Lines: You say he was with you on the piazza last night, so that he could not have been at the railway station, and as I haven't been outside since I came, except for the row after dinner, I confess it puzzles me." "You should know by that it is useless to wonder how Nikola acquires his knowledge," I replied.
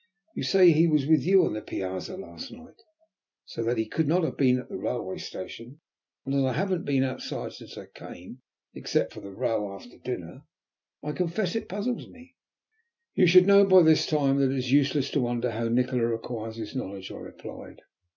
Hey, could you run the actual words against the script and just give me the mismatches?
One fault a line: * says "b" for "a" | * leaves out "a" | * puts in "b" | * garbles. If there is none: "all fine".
* puts in "this time"